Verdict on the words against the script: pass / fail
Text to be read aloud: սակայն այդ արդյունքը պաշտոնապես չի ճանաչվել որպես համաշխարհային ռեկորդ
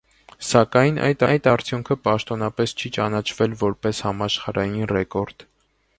fail